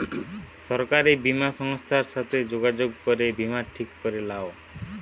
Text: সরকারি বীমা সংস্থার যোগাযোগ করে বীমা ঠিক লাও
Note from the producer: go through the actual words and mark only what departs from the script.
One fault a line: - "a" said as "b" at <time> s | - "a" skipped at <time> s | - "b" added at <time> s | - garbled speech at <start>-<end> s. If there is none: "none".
- "সাথে" added at 2.1 s
- "করে" added at 4.0 s